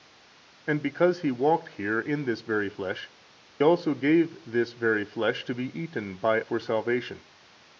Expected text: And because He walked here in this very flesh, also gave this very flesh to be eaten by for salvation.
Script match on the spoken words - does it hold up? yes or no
yes